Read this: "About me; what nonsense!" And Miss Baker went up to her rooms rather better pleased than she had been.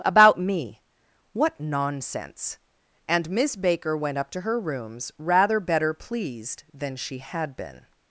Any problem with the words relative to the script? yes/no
no